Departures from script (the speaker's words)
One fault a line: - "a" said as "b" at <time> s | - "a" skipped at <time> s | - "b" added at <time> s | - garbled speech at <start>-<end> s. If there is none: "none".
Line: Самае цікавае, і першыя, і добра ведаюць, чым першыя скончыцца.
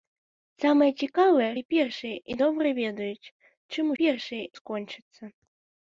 none